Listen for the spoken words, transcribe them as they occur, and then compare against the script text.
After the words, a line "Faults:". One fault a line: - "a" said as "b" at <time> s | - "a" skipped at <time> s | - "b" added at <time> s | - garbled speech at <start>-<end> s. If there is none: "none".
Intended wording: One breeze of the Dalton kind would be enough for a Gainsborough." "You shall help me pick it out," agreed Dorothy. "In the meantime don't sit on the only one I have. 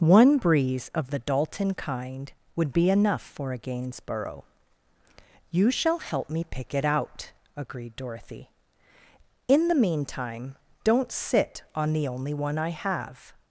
One breeze of the Dalton kind would be enough for a Gainsborough." "You shall help me pick it out," agreed Dorothy. "In the meantime don't sit on the only one I have.
Faults:
none